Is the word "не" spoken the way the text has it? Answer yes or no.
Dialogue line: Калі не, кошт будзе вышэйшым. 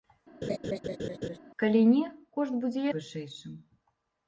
yes